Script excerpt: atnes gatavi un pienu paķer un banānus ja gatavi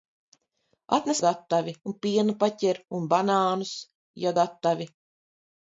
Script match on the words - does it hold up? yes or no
yes